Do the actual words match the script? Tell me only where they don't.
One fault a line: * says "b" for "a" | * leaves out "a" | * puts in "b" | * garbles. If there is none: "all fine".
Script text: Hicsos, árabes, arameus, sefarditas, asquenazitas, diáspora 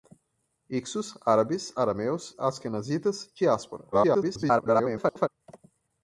* leaves out "sefarditas"
* garbles